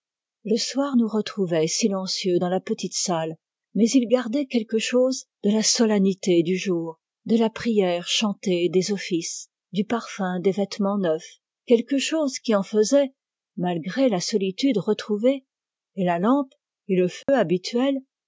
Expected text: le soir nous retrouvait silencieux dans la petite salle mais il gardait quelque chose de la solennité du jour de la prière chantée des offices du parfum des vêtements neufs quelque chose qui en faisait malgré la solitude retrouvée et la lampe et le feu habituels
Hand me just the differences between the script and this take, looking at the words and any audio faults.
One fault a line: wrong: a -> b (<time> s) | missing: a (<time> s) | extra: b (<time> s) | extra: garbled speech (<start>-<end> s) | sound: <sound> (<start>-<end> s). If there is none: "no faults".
sound: dropout (17.2-17.3 s)